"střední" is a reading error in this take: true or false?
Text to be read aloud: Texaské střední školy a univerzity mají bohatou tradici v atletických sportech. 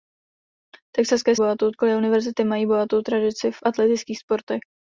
true